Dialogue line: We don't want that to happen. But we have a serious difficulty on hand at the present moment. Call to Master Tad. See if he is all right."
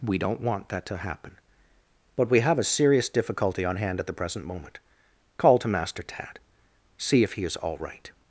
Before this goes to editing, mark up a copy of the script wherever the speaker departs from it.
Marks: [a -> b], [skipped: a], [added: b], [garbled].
We don't want that to happen. But we have a serious difficulty on hand at the present moment. Call to Master Tad. See if he is all right."